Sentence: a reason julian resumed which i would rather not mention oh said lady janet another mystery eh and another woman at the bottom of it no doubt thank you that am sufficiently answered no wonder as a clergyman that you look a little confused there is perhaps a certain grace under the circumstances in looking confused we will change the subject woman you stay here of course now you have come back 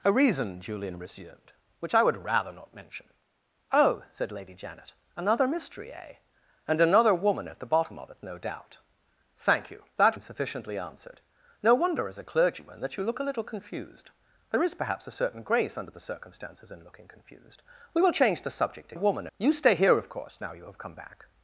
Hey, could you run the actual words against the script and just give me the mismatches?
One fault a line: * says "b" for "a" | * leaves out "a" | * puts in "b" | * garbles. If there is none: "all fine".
all fine